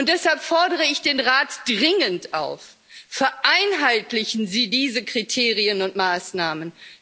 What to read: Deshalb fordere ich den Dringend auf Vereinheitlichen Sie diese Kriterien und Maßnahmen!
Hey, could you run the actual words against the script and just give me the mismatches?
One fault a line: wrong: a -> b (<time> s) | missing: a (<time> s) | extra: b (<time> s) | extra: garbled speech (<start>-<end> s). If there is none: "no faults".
extra: Rat (1.2 s)